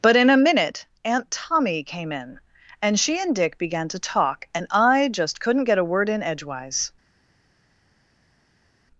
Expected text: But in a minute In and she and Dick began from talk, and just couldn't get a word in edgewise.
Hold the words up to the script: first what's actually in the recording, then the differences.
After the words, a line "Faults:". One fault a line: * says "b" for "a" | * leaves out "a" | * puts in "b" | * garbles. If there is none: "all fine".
But in a minute Aunt Tommy came in and she and Dick began to talk, and I just couldn't get a word in edgewise.
Faults:
* puts in "Aunt Tommy came"
* says "to" for "from"
* puts in "I"